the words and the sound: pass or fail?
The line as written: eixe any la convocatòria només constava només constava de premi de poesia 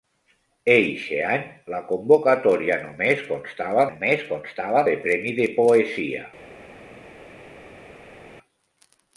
pass